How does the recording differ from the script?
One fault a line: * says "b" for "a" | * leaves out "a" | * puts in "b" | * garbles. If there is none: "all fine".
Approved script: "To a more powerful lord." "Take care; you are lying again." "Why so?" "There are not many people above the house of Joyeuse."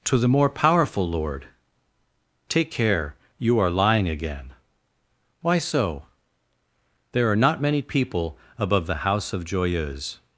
* says "the" for "a"